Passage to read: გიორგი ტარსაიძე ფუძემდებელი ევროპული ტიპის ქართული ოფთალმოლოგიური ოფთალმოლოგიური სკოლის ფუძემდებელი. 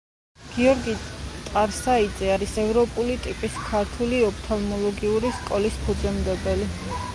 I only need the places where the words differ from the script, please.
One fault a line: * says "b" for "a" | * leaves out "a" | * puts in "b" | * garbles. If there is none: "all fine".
* says "არის" for "ფუძემდებელი"
* leaves out "ოფთალმოლოგიური"